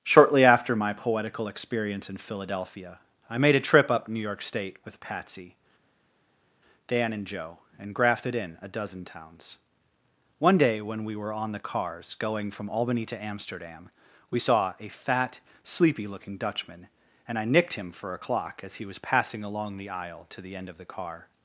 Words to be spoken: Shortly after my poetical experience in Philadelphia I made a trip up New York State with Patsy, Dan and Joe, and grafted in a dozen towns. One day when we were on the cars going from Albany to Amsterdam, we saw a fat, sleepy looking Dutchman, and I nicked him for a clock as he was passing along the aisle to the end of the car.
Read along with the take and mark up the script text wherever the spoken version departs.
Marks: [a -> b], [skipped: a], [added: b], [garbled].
Shortly after my poetical experience in Philadelphia I made a trip up New York State with Patsy, Dan and Joe, and grafted in a dozen towns. One day when we were on the cars going from Albany to Amsterdam, we saw a fat, sleepy looking Dutchman, and I nicked him for a clock as he was passing along the aisle to the end of the car.